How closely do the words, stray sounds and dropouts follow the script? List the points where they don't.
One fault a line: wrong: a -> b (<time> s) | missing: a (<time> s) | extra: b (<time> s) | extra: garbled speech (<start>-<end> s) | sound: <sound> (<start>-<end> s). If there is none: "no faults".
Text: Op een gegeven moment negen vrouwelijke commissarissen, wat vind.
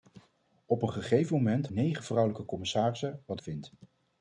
no faults